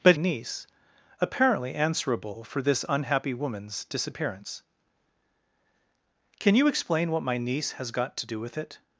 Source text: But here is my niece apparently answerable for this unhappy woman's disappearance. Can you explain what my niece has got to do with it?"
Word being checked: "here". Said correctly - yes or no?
no